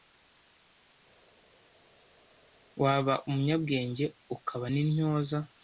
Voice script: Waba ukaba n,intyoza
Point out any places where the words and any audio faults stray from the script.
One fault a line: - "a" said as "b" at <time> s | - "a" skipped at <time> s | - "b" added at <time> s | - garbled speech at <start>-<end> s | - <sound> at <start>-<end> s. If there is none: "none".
- "umunyabwenge" added at 3.3 s